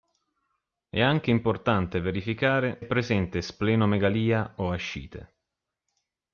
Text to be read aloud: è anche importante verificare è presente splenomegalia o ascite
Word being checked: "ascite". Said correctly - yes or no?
yes